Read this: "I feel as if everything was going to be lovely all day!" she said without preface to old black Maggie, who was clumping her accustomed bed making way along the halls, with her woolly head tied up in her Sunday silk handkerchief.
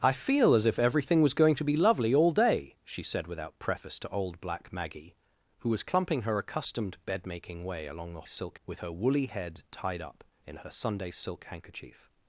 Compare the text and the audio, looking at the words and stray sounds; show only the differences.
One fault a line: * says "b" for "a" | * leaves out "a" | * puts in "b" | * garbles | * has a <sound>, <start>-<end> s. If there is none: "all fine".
* says "silk" for "halls"